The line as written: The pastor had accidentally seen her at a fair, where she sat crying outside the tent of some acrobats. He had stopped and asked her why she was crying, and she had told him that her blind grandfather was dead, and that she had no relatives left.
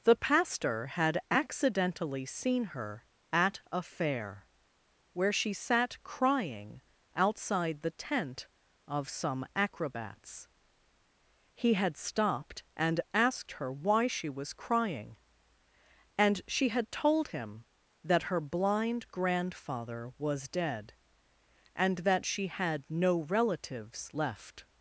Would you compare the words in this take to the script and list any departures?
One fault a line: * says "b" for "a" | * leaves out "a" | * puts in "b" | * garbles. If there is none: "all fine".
all fine